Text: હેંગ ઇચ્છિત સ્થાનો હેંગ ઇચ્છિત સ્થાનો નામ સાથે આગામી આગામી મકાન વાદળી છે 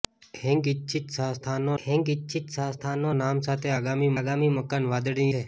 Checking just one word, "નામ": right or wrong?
right